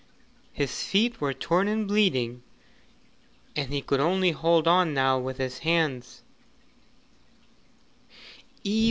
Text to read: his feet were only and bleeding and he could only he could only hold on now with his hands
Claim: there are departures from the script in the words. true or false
true